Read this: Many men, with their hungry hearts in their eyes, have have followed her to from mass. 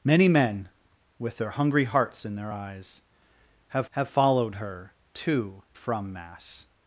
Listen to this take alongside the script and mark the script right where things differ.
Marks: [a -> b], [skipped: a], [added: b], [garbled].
Many men, with their hungry hearts in their eyes, have have followed her to from mass.